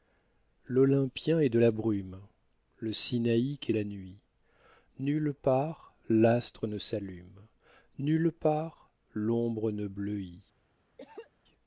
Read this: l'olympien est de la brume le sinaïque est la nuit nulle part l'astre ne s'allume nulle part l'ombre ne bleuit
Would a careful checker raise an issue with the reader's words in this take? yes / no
no